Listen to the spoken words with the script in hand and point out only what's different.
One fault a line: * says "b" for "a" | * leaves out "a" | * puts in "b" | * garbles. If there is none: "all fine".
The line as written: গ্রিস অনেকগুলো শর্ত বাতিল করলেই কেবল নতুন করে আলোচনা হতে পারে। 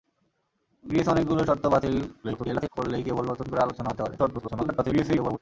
* garbles
* garbles